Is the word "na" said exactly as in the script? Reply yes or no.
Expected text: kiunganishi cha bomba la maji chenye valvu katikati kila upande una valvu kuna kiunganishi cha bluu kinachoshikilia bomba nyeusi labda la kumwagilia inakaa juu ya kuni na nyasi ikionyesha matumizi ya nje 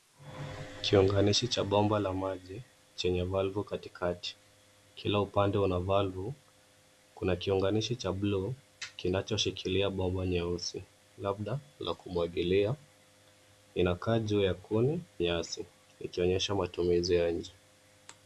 no